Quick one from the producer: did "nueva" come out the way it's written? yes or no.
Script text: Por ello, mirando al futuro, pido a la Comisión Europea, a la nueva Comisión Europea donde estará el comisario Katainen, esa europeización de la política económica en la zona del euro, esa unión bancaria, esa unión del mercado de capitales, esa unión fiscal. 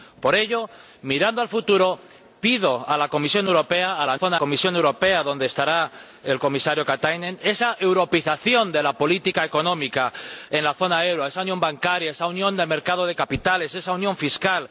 no